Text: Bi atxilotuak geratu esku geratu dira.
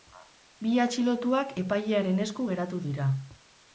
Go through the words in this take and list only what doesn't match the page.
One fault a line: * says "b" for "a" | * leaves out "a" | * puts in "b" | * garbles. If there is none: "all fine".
* says "epailearen" for "geratu"